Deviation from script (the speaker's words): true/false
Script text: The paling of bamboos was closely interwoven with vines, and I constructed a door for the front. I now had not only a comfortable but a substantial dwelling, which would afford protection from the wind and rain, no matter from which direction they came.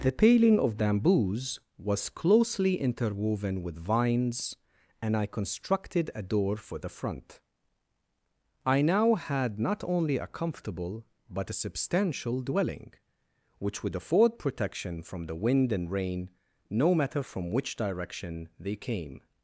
false